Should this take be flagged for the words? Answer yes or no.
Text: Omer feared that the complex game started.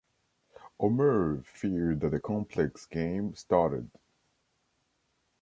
no